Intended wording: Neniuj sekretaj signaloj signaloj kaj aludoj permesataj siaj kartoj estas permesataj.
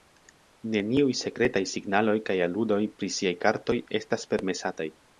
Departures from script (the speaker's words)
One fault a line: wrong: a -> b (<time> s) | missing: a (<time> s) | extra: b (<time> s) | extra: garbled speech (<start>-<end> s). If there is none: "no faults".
missing: signaloj (2.2 s)
wrong: permesataj -> pri (3.0 s)